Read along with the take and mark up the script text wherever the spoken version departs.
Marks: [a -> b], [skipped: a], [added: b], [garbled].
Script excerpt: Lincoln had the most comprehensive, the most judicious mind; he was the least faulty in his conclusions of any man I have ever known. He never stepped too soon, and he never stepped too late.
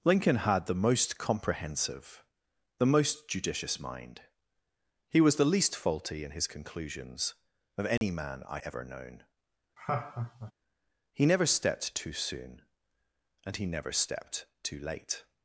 Lincoln had the most comprehensive, the most judicious mind; he was the least faulty in his conclusions of any man I [skipped: have] ever known. He never stepped too soon, and he never stepped too late.